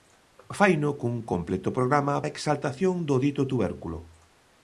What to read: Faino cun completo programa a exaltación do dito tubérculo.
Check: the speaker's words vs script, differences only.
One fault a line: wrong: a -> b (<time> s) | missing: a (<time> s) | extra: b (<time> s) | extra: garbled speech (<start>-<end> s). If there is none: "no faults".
no faults